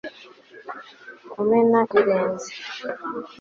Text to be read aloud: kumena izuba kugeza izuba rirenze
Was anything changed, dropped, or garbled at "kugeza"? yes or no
yes